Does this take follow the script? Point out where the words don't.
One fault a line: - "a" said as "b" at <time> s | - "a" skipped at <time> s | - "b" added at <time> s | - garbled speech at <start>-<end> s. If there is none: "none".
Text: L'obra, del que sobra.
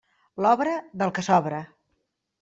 none